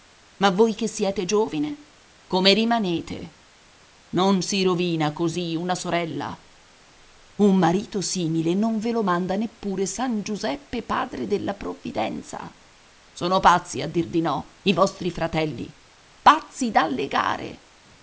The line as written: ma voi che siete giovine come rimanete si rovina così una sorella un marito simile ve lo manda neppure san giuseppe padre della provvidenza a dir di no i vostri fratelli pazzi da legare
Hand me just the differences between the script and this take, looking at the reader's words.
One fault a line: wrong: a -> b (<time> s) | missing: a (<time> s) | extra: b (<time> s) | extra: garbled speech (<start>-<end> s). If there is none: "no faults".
extra: non (4.1 s)
extra: non (8.5 s)
extra: sono pazzi (13.1 s)